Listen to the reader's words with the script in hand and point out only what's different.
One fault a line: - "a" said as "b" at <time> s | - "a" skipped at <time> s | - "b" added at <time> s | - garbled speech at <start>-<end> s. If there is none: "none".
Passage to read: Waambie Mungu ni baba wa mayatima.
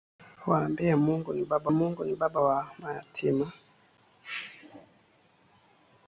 - "Mungu ni baba" added at 1.7 s